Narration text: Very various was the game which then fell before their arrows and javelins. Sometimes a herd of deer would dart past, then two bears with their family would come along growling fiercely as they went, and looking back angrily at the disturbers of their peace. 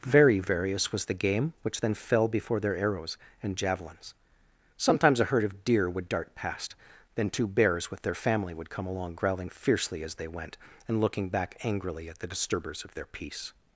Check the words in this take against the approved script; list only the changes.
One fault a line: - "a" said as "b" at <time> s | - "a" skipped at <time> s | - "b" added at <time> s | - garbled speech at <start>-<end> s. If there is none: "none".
none